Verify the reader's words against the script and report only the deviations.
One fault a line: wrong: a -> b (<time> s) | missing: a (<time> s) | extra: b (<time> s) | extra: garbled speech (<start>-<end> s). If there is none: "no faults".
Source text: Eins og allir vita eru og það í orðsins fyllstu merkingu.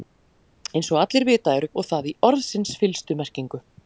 no faults